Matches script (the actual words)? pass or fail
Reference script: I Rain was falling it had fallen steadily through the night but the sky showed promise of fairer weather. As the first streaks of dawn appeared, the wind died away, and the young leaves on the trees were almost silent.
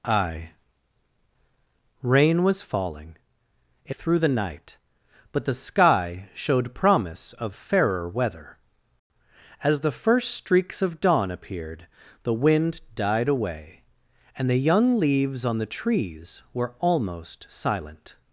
fail